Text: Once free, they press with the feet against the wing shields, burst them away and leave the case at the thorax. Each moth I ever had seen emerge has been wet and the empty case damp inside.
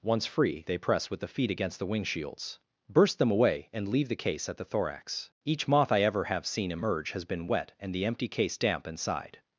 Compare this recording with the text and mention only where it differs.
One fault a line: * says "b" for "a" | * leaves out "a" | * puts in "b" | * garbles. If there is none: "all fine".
* says "have" for "had"